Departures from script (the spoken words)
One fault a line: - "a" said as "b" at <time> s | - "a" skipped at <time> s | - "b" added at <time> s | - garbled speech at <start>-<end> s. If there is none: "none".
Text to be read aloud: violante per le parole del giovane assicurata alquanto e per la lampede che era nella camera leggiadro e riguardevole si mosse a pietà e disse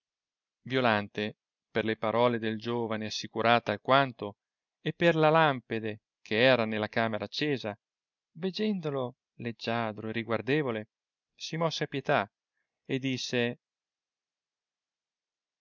- "accesa veggendolo" added at 7.2 s